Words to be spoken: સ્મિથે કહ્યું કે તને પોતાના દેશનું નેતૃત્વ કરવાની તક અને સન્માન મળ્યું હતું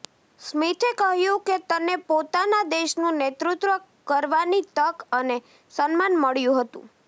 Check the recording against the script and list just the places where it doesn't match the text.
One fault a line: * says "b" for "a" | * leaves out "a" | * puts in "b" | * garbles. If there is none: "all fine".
all fine